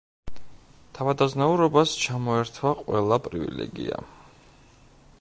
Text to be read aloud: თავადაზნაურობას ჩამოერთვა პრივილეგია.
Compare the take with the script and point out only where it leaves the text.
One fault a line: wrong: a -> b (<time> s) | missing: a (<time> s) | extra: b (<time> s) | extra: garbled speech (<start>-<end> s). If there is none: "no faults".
extra: ყველა (2.8 s)